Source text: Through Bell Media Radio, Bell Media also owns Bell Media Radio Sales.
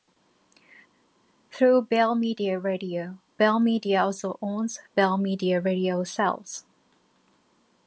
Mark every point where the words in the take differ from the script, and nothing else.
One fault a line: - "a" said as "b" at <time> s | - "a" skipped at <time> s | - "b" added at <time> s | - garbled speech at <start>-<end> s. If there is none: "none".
none